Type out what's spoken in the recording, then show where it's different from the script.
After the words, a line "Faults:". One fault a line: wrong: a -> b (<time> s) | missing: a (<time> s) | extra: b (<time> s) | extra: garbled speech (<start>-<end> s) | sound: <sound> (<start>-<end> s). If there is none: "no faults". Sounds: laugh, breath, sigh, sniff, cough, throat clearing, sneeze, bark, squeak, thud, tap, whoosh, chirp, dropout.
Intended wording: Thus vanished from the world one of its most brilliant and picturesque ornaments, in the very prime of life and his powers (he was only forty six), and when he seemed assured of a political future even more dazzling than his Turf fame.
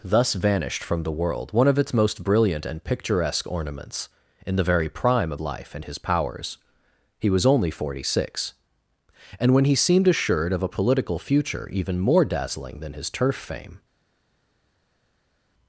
Thus vanished from the world one of its most brilliant and picturesque ornaments, in the very prime of life and his powers (he was only forty six), and when he seemed assured of a political future even more dazzling than his Turf fame.
Faults:
no faults